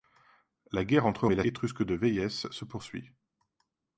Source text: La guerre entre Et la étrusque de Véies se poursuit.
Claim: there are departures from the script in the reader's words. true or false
false